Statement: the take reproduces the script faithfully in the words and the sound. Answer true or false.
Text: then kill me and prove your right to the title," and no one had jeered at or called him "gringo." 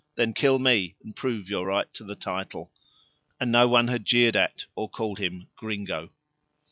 true